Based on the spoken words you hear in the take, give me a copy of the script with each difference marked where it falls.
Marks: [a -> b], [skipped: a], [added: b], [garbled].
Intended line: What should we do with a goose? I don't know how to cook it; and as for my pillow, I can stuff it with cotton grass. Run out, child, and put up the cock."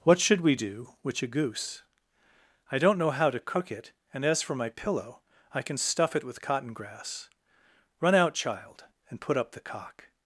What should we do [with -> which] a goose? I don't know how to cook it; and as for my pillow, I can stuff it with cotton grass. Run out, child, and put up the cock."